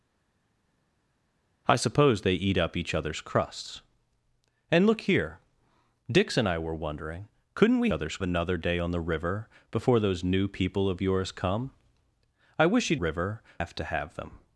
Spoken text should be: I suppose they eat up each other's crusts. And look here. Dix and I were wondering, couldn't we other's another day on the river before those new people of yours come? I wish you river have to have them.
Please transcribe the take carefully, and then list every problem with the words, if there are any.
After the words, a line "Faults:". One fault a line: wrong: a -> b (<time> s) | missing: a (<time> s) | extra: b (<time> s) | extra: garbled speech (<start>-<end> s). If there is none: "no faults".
I suppose they eat up each other's crusts. And look here. Dix and I were wondering, couldn't we other's another day on the river before those new people of yours come? I wish you river have to have them.
Faults:
no faults